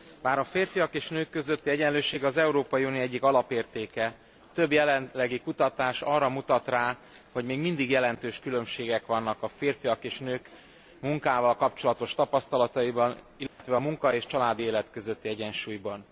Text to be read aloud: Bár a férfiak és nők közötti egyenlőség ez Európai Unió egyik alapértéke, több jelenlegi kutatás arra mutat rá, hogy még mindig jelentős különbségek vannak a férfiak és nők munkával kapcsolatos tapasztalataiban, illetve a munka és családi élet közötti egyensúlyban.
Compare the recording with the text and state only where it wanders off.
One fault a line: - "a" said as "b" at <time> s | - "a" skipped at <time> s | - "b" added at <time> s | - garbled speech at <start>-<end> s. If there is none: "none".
- "ez" said as "az" at 2.2 s